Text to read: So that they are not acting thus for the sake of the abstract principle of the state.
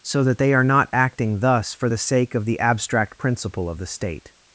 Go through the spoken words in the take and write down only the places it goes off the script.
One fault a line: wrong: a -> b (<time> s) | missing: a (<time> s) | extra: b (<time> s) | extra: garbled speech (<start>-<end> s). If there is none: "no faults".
no faults